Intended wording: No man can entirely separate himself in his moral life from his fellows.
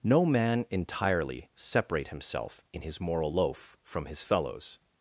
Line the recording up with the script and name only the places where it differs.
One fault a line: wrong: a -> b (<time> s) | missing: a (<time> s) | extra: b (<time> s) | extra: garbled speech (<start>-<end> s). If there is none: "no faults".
missing: can (0.7 s)
wrong: life -> loaf (3.3 s)